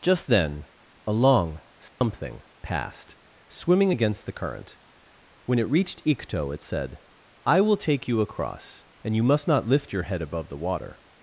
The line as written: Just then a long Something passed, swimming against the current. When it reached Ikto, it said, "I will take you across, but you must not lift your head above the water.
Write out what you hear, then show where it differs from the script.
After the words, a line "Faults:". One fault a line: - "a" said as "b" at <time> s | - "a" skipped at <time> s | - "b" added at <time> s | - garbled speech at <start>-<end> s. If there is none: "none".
Just then a long Something passed, swimming against the current. When it reached Ikto, it said, "I will take you across, and you must not lift your head above the water.
Faults:
- "but" said as "and" at 9.0 s